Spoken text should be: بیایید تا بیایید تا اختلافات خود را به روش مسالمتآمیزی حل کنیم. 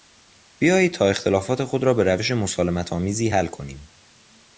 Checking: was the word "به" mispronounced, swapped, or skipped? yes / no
no